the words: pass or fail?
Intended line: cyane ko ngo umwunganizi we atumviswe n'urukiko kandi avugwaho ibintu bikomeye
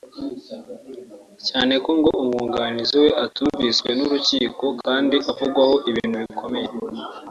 pass